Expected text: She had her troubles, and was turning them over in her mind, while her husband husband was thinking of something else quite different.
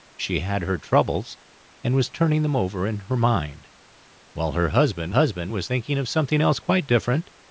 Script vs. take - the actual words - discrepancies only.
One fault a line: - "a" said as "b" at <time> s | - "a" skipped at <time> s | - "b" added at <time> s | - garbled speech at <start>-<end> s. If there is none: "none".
none